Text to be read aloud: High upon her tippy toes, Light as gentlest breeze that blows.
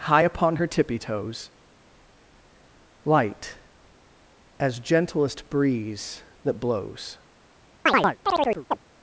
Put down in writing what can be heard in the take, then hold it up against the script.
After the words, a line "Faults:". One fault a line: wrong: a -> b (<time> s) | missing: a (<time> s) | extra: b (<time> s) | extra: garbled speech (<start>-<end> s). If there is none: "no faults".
High upon her tippy toes, Light as gentlest breeze that blows.
Faults:
no faults